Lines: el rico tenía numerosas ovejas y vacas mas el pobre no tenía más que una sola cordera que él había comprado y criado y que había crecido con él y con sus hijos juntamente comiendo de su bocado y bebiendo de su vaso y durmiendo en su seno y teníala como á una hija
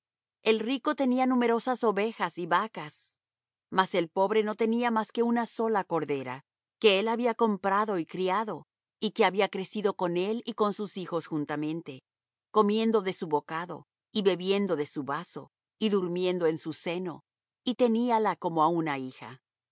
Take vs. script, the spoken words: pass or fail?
pass